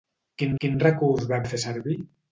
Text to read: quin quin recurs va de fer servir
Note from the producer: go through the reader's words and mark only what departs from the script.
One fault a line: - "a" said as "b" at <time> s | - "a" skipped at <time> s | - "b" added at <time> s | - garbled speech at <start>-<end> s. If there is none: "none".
none